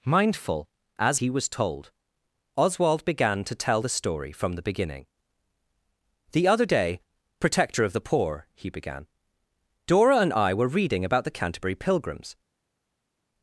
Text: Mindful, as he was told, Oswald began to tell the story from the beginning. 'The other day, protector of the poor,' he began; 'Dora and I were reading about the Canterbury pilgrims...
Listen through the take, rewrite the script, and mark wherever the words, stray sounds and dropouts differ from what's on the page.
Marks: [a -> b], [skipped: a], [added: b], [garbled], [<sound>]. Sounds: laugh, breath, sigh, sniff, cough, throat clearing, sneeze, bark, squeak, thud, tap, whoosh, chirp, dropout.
Mindful, as he was told, Oswald began to tell the story from the beginning. 'The other day, protector of the poor,' he began; 'Dora and I were reading about the Canterbury pilgrims...